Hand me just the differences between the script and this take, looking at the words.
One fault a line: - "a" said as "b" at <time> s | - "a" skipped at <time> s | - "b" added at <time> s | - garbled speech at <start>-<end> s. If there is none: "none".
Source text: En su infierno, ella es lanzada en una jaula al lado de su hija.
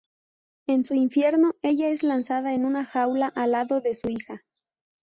none